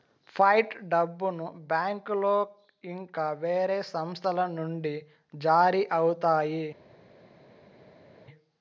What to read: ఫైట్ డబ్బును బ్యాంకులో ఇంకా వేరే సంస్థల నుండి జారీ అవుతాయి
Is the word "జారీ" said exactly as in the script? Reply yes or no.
yes